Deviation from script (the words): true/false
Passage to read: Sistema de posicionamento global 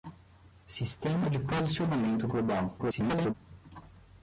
true